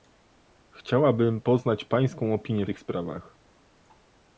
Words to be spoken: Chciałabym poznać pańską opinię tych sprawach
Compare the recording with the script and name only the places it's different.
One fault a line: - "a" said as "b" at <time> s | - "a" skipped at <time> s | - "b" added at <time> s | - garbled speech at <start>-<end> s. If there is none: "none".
none